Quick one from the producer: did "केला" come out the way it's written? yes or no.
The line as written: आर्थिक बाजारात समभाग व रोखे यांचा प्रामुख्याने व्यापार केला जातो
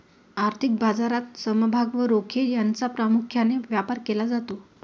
yes